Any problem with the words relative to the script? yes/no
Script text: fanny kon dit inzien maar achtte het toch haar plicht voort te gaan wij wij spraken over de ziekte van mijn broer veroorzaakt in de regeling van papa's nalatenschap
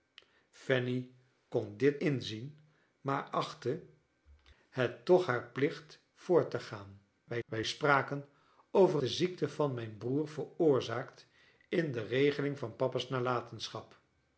no